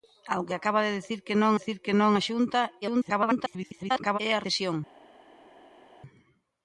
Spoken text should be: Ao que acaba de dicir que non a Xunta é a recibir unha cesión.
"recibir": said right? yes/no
no